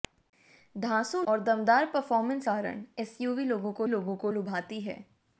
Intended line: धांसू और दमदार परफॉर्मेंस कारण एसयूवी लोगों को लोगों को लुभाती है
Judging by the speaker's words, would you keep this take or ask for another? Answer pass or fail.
pass